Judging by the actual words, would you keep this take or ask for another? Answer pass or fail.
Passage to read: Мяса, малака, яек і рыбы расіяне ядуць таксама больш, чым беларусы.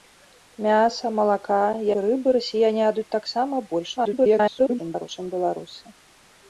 fail